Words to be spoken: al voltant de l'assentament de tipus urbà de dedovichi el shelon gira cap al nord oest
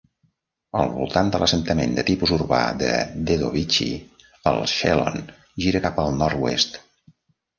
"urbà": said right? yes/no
yes